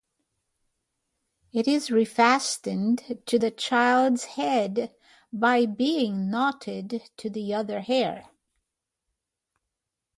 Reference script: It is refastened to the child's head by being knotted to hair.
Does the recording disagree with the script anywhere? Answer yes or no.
yes